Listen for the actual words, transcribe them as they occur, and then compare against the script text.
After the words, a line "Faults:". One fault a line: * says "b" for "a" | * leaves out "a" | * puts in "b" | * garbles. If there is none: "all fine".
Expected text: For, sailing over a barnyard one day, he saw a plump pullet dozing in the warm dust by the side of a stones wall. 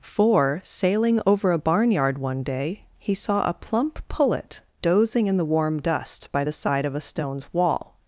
For, sailing over a barnyard one day, he saw a plump pullet dozing in the warm dust by the side of a stones wall.
Faults:
all fine